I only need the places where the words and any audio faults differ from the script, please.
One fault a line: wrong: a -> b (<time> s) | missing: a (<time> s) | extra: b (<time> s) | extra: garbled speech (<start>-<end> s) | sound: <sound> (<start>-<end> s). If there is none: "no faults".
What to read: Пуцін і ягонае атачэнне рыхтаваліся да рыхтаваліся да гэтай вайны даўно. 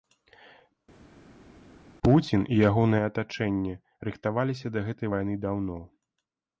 missing: рыхтаваліся да (4.9 s)